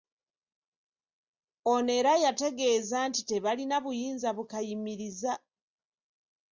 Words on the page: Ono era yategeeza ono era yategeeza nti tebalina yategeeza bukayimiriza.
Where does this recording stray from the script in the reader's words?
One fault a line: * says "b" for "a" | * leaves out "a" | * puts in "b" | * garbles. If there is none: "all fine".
* leaves out "ono era yategeeza"
* says "buyinza" for "yategeeza"